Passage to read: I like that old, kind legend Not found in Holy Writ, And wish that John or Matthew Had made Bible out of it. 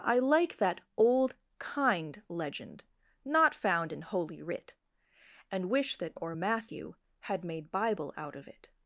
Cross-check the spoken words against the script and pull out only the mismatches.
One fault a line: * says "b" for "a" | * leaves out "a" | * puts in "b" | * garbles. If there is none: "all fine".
* leaves out "John"